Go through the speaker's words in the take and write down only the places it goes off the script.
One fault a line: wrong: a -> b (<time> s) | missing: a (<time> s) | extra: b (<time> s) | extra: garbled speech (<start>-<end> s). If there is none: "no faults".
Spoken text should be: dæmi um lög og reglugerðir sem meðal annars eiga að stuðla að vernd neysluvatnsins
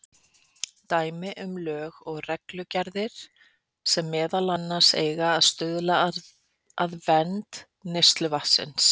no faults